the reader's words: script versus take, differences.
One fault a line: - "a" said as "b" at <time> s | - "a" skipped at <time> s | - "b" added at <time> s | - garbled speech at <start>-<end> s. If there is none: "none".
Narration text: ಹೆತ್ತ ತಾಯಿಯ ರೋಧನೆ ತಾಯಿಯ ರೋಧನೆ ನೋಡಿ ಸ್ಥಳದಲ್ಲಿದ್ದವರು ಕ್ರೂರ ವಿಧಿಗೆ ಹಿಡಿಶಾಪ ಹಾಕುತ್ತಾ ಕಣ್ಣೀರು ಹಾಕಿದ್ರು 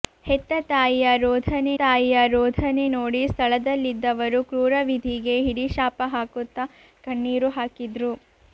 none